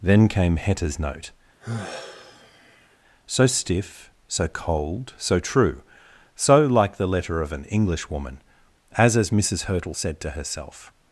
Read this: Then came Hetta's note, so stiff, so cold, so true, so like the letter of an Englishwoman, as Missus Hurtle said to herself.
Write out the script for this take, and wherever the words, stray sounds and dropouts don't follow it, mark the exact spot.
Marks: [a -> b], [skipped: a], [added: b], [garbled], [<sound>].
Then came Hetta's note, [sigh] so stiff, so cold, so true, so like the letter of an Englishwoman, as [added: as] Missus Hurtle said to herself.